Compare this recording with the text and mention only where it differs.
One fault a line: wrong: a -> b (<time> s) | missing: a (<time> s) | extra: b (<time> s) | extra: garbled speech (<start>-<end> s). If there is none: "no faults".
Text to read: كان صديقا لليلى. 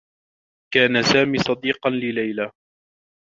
extra: سامي (1.0 s)